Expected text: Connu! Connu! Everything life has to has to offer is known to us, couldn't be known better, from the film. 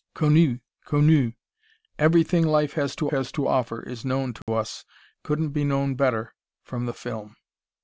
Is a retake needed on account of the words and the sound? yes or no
yes